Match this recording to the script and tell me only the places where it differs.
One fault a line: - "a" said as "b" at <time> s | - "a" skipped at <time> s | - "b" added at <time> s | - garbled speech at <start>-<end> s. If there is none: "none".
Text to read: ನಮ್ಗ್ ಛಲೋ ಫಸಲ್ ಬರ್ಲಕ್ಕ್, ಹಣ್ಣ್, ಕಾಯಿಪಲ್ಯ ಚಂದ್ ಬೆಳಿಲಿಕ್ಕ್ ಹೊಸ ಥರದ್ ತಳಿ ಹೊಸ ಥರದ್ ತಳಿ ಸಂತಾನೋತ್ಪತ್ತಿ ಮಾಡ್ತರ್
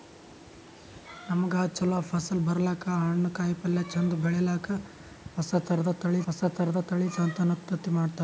none